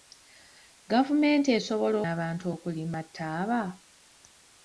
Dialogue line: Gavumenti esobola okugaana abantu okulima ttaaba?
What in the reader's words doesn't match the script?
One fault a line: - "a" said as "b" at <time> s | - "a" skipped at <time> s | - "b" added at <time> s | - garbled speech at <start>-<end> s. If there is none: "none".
- "okugaana" skipped at 2.0 s